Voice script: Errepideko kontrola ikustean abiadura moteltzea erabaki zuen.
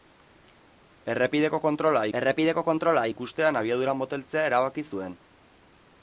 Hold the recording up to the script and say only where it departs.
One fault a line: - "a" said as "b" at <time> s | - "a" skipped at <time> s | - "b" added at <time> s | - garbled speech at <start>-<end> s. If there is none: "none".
- "errepideko kontrola" added at 2.2 s